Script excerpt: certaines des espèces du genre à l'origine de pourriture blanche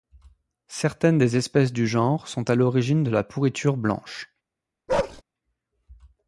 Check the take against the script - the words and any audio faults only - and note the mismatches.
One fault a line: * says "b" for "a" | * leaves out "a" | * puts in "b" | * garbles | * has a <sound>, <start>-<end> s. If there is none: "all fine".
* puts in "sont"
* puts in "la"
* has a bark, 4.9-5.2 s